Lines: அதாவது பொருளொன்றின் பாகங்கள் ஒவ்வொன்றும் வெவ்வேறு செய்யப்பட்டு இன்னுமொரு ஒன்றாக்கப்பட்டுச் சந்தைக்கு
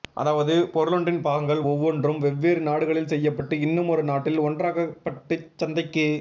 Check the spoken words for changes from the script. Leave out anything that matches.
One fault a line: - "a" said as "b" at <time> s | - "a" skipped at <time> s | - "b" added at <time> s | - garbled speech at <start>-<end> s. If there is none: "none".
- "நாடுகளில்" added at 2.6 s
- "நாட்டில்" added at 4.0 s